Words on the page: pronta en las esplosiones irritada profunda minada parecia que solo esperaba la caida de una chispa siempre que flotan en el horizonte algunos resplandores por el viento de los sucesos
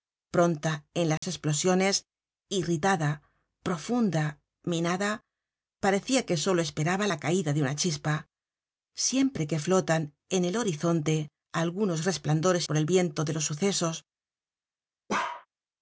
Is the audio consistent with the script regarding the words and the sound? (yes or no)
no